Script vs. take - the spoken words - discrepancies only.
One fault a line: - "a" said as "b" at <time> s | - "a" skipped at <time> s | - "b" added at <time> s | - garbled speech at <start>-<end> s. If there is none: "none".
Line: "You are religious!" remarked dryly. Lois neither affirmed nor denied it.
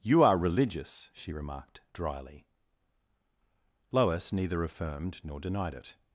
- "she" added at 1.1 s